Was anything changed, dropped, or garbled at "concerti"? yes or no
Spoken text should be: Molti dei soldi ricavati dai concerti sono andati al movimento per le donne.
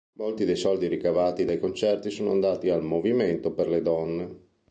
no